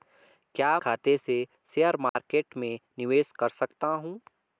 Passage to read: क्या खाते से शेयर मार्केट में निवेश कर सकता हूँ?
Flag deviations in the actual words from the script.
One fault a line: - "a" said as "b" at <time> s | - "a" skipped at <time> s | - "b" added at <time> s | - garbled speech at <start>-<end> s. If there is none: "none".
none